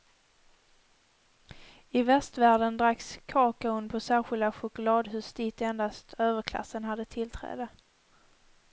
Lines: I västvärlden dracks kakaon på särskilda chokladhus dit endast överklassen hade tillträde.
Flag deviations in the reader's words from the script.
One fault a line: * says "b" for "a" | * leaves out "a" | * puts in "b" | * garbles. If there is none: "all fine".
all fine